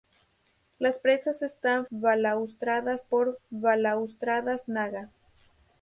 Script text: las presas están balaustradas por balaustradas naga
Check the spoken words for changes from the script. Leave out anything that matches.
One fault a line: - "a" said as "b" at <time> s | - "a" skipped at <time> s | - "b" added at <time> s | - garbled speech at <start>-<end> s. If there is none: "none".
none